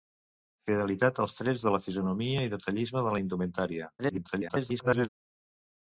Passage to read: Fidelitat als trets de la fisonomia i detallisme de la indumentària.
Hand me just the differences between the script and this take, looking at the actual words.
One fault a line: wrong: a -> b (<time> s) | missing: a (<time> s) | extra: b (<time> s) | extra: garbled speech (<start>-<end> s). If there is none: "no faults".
extra: garbled speech (4.0-5.1 s)